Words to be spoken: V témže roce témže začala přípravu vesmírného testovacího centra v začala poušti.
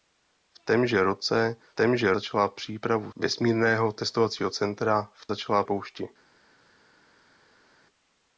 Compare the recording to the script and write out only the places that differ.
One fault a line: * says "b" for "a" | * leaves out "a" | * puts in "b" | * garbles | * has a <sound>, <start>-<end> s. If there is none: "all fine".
all fine